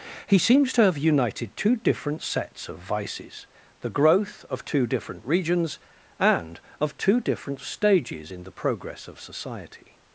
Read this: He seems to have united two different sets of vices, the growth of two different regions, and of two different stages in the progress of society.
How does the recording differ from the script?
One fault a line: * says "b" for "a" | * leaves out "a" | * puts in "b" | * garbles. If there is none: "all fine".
all fine